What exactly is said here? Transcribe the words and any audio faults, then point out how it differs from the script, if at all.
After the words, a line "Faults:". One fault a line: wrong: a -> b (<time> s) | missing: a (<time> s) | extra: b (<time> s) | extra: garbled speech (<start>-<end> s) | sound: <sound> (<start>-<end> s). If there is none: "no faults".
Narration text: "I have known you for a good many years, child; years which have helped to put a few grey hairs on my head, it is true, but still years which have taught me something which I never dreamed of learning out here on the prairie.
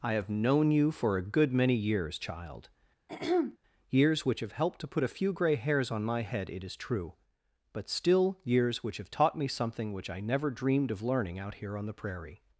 "I have known you for a good many years, child; years which have helped to put a few grey hairs on my head, it is true, but still years which have taught me something which I never dreamed of learning out here on the prairie.
Faults:
sound: throat clearing (3.1-3.6 s)